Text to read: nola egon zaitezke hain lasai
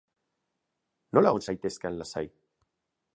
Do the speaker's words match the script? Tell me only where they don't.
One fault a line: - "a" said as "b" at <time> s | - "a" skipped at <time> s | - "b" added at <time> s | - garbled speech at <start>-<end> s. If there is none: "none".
none